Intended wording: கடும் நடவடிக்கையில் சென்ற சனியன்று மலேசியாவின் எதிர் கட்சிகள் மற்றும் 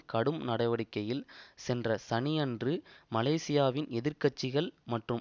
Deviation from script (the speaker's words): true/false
false